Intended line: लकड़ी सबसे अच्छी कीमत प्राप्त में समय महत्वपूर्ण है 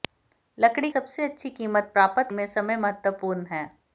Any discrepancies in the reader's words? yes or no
no